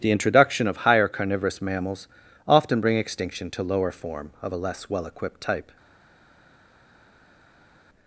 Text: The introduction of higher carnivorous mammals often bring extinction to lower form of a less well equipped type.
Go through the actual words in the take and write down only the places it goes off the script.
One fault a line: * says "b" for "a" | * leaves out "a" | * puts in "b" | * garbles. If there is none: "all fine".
all fine